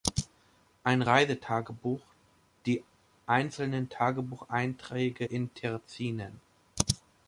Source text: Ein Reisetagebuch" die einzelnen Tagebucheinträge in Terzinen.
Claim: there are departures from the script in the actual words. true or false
false